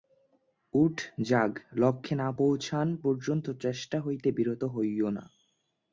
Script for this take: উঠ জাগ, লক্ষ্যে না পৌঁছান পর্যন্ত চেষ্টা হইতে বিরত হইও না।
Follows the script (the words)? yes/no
yes